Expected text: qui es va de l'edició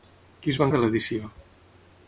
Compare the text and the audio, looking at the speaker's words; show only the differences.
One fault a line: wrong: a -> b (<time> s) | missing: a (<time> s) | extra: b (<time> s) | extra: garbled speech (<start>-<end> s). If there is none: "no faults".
no faults